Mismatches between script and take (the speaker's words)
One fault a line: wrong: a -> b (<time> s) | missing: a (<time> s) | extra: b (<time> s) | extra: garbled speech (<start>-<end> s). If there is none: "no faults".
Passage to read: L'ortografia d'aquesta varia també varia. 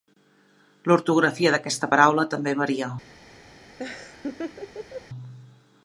wrong: varia -> paraula (2.0 s)